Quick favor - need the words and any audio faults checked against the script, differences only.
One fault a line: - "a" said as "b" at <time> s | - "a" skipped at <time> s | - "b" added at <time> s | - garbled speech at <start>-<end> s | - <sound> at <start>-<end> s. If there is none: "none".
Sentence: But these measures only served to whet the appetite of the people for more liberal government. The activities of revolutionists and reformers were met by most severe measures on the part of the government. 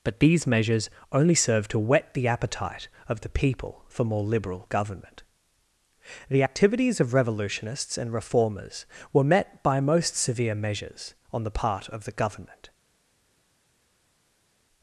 none